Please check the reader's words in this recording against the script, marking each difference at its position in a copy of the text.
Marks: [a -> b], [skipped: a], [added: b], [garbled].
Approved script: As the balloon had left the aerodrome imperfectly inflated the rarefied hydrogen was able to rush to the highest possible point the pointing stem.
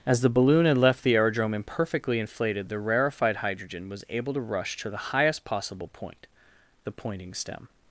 As the balloon had left the aerodrome imperfectly inflated the rarefied hydrogen was able to rush to the highest possible point the pointing stem.